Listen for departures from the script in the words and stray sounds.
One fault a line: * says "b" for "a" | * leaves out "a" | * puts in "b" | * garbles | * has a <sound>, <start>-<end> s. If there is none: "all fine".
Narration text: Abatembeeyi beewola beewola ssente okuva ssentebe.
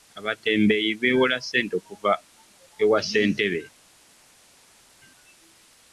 * leaves out "beewola"
* puts in "ewa"